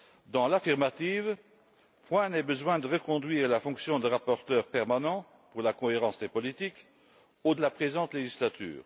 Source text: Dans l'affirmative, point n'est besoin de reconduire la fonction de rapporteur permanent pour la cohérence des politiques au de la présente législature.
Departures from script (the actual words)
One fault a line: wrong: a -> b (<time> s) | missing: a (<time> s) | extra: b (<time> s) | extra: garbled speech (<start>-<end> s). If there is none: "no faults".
no faults